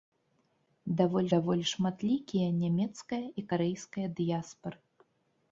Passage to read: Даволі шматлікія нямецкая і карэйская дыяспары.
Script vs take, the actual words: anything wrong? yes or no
yes